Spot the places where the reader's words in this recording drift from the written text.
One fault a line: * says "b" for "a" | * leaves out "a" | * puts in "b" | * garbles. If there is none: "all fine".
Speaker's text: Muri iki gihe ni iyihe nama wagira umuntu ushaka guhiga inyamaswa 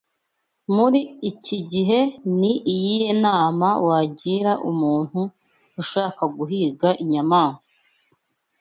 all fine